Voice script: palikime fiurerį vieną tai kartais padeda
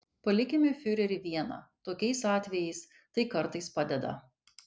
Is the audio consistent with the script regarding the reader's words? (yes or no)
no